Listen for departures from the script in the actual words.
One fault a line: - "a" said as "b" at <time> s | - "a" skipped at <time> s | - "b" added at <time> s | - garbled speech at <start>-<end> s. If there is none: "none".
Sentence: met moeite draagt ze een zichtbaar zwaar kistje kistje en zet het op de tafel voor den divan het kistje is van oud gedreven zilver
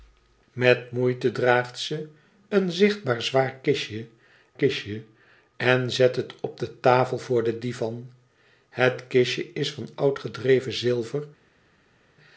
none